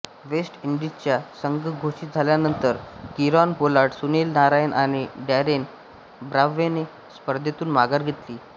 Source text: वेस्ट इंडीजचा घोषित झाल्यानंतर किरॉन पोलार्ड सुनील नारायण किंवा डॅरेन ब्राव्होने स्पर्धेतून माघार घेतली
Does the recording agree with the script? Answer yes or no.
no